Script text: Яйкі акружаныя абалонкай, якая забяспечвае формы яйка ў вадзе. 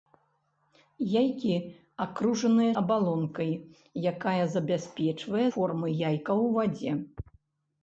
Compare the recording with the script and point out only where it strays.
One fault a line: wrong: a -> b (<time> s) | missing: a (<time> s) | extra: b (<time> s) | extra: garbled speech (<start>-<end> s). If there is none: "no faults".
no faults